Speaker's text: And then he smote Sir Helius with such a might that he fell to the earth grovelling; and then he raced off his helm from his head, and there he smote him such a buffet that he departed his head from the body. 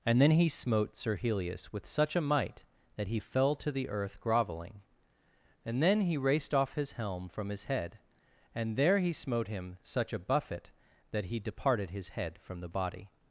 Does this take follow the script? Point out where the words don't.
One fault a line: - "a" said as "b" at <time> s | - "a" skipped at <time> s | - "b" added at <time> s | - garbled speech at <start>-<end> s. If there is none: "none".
none